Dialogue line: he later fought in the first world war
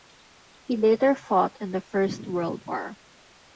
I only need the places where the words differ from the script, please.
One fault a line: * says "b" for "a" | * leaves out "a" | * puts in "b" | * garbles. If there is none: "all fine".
all fine